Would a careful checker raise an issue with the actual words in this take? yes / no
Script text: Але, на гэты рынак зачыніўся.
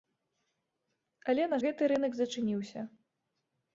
no